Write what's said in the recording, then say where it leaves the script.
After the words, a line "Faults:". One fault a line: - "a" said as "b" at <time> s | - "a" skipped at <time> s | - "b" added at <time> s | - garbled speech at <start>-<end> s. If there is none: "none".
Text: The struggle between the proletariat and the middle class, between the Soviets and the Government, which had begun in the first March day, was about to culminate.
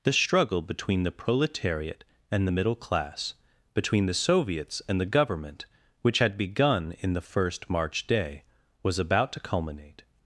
The struggle between the proletariat and the middle class, between the Soviets and the Government, which had begun in the first March day, was about to culminate.
Faults:
none